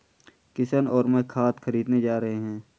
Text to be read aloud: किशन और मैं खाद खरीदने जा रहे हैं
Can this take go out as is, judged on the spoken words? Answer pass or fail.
pass